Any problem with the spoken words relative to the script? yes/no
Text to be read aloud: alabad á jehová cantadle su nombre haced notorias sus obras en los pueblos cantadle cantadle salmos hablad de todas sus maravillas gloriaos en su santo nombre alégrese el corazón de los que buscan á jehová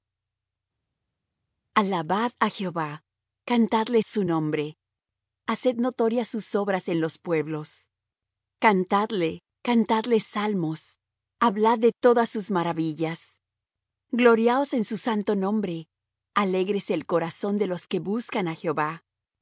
no